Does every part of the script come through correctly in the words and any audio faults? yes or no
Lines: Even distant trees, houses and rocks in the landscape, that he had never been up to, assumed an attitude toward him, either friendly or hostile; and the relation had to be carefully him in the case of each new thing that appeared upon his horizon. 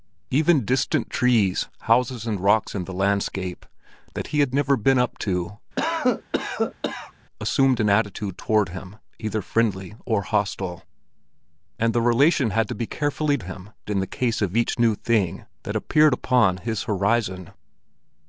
no